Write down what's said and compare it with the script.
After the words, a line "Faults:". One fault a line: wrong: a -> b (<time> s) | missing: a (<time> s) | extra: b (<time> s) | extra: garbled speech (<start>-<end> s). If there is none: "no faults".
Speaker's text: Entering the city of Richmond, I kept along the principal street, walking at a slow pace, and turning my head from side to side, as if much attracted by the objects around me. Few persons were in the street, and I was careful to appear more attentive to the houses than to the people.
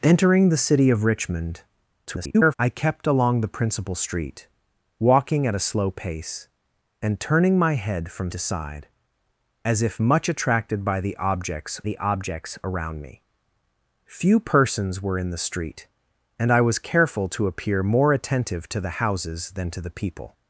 Entering the city of Richmond, [garbled] I kept along the principal street, walking at a slow pace, and turning my head from to side, as if much attracted by the objects the objects around me. Few persons were in the street, and I was careful to appear more attentive to the houses than to the people.
Faults:
extra: garbled speech (2.1-2.5 s)
missing: side (8.3 s)
extra: the objects (11.8 s)